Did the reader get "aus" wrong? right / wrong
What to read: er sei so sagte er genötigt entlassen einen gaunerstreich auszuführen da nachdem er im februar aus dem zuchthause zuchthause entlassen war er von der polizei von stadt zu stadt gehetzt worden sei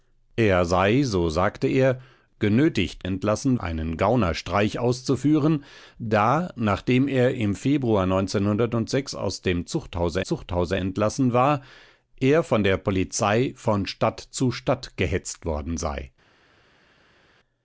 right